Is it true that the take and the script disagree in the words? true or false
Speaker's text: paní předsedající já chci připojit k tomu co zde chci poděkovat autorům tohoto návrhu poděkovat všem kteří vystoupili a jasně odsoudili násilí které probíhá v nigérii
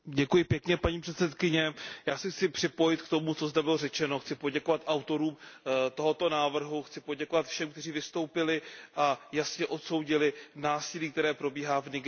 true